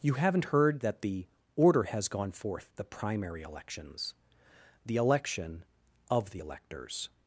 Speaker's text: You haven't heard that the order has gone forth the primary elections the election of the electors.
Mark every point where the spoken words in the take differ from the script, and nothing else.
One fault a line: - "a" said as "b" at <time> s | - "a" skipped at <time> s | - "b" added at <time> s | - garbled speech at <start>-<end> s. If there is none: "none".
none